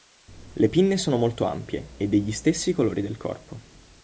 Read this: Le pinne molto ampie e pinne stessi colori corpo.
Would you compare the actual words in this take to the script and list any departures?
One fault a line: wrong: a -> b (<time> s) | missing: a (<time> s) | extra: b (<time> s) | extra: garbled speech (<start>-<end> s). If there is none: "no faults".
extra: sono (1.0 s)
wrong: pinne -> degli (2.1 s)
extra: del (3.0 s)